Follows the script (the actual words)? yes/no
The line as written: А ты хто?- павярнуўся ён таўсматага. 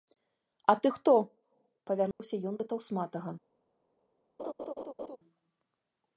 no